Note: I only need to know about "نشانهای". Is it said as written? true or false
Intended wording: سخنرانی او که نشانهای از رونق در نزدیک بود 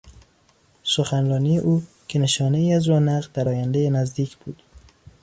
true